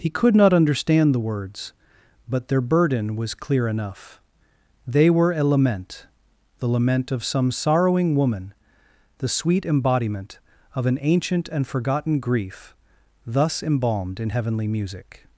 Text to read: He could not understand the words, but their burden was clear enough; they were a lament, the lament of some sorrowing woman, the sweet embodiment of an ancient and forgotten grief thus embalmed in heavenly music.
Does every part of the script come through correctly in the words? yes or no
yes